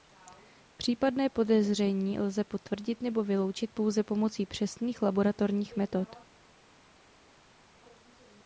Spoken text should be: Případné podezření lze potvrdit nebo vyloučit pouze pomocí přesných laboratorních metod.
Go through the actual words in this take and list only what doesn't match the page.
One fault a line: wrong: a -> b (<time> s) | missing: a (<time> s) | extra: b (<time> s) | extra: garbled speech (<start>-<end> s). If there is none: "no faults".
no faults